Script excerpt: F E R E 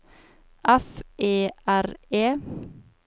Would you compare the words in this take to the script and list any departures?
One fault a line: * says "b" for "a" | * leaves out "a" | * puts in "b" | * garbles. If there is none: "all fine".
all fine